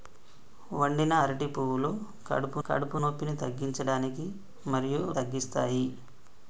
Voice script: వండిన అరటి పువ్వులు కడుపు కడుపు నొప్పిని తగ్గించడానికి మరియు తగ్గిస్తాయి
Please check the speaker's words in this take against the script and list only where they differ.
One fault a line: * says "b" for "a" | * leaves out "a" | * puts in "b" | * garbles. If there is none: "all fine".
all fine